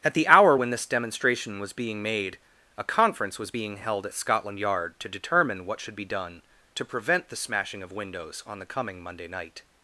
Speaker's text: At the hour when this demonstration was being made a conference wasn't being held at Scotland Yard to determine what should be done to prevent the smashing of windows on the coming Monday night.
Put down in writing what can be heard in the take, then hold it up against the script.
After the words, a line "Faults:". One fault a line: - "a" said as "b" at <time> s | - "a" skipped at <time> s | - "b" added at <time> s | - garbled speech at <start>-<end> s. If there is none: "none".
At the hour when this demonstration was being made a conference was being held at Scotland Yard to determine what should be done to prevent the smashing of windows on the coming Monday night.
Faults:
- "wasn't" said as "was" at 3.4 s